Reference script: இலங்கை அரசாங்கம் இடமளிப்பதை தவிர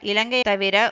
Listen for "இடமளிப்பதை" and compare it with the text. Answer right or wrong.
wrong